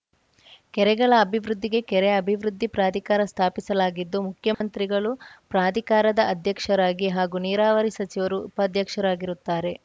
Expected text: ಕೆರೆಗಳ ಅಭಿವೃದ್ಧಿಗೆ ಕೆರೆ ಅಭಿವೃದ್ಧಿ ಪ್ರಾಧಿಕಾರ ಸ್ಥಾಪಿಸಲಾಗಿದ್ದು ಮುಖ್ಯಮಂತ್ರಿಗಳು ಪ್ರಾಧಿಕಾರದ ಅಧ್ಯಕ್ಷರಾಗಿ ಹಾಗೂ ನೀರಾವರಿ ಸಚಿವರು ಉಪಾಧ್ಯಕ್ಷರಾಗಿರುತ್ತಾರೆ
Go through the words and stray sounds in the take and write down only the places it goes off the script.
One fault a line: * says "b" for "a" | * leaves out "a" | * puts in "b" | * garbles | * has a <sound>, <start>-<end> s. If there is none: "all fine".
* has a dropout, 4.5-4.6 s